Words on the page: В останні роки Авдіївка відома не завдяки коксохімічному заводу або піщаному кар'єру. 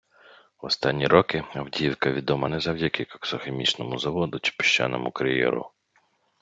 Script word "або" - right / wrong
wrong